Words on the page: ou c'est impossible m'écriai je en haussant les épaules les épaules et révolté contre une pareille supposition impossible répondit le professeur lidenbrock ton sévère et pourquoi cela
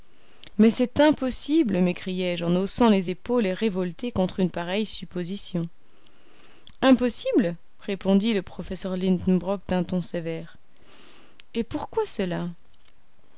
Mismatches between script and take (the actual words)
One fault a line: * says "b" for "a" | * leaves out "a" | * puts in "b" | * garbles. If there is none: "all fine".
* says "mais" for "ou"
* leaves out "les épaules"
* puts in "d'un"